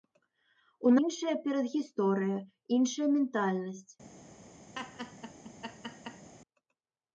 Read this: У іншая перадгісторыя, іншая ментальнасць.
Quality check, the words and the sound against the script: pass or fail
fail